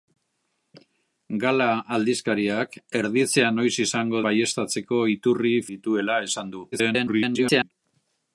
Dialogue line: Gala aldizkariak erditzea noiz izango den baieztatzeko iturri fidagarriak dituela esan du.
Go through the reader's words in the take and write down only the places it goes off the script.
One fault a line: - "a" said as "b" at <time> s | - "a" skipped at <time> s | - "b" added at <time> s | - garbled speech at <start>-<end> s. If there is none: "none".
- "den" skipped at 4.2 s
- "fidagarriak" skipped at 5.6 s
- garbled speech at 6.7-7.7 s